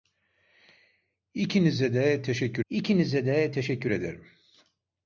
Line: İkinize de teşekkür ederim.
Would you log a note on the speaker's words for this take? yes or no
yes